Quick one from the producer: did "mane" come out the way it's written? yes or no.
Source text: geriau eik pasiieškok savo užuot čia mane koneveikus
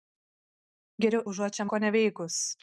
no